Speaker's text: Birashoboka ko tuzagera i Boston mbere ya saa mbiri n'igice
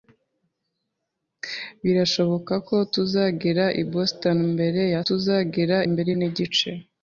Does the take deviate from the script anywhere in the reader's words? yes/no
yes